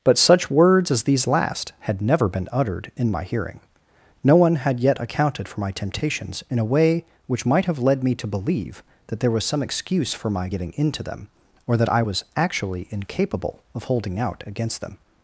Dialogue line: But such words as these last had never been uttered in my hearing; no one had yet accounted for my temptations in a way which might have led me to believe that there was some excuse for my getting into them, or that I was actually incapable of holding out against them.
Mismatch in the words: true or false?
false